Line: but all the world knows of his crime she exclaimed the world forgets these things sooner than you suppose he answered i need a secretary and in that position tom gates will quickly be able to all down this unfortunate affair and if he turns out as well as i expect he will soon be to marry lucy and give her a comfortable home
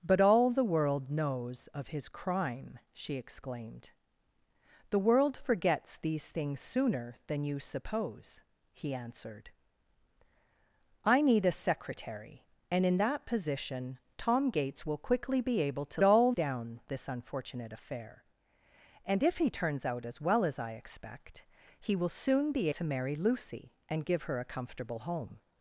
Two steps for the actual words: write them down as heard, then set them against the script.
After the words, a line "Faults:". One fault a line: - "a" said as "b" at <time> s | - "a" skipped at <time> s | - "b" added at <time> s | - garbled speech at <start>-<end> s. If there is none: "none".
but all the world knows of his crime she exclaimed the world forgets these things sooner than you suppose he answered i need a secretary and in that position tom gates will quickly be able to all down this unfortunate affair and if he turns out as well as i expect he will soon be to marry lucy and give her a comfortable home
Faults:
none